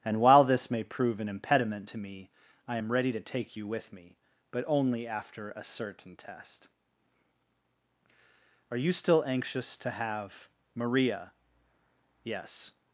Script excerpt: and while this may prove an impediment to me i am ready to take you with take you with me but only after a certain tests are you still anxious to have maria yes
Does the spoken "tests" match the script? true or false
false